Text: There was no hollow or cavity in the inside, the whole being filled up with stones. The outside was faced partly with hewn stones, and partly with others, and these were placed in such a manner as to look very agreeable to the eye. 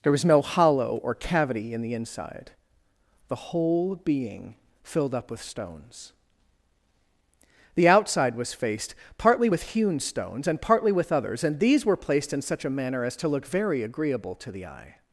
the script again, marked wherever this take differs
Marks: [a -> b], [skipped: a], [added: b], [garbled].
There was no hollow or cavity in the inside, the whole being filled up with stones. The outside was faced partly with hewn stones, and partly with others, and these were placed in such a manner as to look very agreeable to the eye.